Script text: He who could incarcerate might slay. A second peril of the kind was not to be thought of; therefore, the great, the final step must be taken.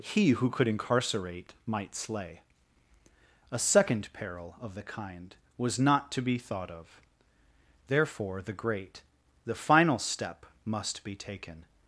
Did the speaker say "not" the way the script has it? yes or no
yes